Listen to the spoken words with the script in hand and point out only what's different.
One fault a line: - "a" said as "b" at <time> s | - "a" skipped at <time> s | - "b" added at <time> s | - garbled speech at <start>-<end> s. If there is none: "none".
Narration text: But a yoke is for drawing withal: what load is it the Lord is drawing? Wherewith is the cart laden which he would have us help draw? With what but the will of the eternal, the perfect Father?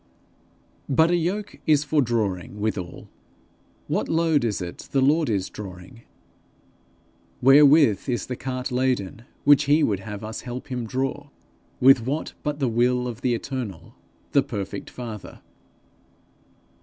- "him" added at 10.7 s